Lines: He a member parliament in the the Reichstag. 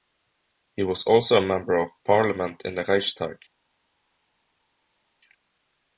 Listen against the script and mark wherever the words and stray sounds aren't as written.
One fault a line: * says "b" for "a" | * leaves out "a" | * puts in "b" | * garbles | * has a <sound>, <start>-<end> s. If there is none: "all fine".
* puts in "was also"
* puts in "of"
* leaves out "the"